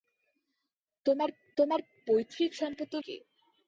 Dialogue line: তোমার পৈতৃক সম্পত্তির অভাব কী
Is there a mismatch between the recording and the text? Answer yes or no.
yes